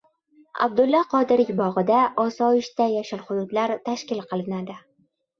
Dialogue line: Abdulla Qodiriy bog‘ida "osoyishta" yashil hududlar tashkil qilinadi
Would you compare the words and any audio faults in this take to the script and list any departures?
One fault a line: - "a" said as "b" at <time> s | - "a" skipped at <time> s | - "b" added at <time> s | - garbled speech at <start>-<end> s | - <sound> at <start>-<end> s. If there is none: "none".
none